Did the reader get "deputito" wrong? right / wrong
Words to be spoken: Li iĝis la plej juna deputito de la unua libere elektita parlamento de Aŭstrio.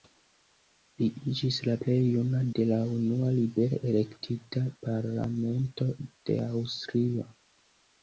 wrong